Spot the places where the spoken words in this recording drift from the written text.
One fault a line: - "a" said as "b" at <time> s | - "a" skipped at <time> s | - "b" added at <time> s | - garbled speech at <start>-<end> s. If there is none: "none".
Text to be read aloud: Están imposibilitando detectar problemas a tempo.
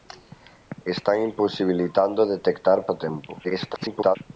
- "problemas" skipped at 2.9 s
- garbled speech at 3.4-4.2 s